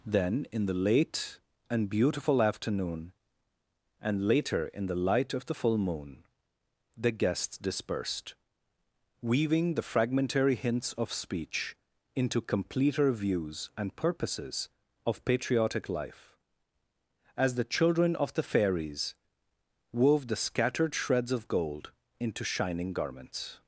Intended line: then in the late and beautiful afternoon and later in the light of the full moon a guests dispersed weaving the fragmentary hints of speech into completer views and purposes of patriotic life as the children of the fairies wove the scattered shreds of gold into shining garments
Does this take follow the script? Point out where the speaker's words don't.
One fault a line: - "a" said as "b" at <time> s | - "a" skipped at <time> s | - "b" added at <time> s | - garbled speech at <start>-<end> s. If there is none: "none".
- "a" said as "the" at 7.0 s